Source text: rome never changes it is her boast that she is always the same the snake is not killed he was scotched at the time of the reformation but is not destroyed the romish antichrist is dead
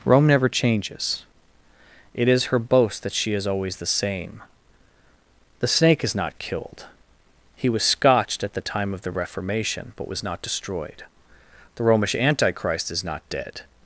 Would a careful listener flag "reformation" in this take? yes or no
no